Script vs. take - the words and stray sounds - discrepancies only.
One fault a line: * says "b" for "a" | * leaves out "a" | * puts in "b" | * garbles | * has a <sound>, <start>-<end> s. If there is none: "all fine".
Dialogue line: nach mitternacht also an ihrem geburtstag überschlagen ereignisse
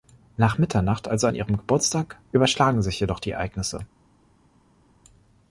* puts in "sich jedoch die"